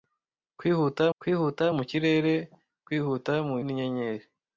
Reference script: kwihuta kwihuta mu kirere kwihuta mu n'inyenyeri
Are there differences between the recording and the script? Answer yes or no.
no